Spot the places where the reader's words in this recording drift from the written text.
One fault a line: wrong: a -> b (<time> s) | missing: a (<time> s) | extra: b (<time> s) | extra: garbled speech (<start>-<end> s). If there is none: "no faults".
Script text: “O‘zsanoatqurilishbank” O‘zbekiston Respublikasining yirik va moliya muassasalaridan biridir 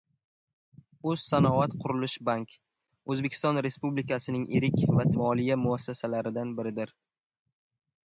no faults